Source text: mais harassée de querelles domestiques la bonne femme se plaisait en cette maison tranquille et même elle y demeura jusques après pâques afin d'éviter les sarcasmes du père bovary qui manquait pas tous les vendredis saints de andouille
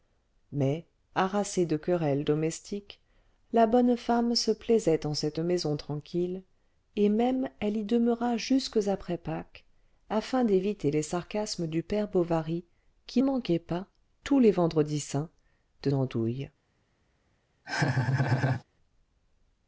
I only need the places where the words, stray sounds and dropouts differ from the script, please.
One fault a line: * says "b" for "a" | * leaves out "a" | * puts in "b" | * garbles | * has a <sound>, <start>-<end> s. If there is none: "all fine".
* has a laugh, 17.6-18.6 s